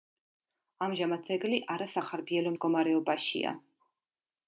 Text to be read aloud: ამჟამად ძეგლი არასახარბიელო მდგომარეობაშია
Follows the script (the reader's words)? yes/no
yes